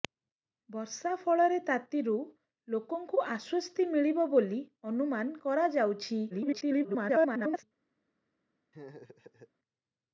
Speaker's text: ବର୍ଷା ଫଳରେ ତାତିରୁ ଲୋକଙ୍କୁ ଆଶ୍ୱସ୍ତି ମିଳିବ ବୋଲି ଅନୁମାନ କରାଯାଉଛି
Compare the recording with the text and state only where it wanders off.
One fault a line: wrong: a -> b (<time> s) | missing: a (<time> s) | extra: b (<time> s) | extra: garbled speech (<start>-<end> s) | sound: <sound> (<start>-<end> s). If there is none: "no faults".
extra: garbled speech (6.3-7.6 s)
sound: laugh (8.7-9.5 s)